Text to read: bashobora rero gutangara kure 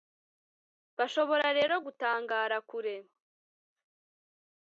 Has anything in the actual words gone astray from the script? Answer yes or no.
no